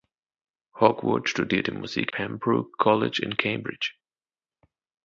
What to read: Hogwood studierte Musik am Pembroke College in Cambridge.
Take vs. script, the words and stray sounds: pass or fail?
fail